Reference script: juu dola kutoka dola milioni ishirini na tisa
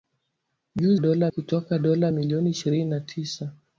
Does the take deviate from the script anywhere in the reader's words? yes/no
no